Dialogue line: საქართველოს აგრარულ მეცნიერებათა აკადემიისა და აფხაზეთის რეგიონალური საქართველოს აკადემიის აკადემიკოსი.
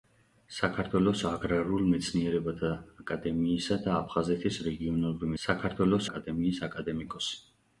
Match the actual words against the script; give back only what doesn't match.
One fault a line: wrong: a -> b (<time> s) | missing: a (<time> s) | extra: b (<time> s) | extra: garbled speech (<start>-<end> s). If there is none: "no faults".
no faults